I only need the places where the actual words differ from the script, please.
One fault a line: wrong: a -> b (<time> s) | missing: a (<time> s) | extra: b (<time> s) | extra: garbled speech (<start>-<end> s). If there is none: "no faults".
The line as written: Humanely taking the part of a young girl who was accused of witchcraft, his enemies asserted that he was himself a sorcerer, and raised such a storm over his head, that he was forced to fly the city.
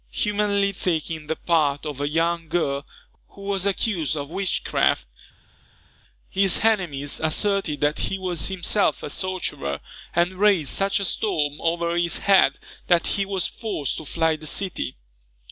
no faults